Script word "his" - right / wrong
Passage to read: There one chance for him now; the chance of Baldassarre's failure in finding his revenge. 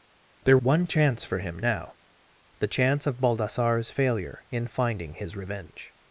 right